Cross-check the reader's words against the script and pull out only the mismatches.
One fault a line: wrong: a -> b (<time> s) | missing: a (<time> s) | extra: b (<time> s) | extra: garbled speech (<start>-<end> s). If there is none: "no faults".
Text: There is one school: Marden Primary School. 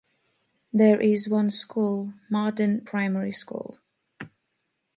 no faults